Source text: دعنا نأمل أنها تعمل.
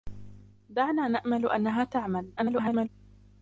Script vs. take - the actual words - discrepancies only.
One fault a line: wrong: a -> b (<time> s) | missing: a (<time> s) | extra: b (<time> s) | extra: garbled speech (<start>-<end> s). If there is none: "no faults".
extra: garbled speech (2.4-2.9 s)